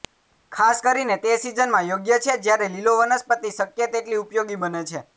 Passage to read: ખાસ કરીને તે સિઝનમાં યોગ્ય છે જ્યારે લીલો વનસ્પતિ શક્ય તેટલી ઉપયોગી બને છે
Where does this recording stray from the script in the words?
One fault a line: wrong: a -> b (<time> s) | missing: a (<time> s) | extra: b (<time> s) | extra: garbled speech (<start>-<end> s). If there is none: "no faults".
no faults